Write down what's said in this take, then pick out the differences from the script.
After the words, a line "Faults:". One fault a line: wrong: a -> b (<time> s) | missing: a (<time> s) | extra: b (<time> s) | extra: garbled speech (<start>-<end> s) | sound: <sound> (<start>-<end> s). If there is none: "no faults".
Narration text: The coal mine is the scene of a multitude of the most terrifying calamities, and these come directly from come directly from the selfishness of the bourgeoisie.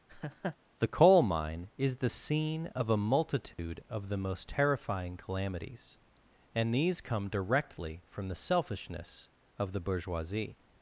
The coal mine is the scene of a multitude of the most terrifying calamities, and these come directly from the selfishness of the bourgeoisie.
Faults:
sound: laugh (0.1-0.6 s)
sound: dropout (3.5-3.6 s)
missing: come directly from (8.3 s)